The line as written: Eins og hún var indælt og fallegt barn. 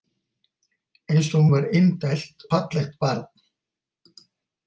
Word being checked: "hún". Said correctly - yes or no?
no